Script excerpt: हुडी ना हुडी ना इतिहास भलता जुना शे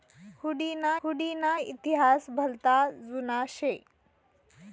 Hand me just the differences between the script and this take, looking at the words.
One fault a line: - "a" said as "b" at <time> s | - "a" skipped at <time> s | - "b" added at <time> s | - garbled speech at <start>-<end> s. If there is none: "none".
none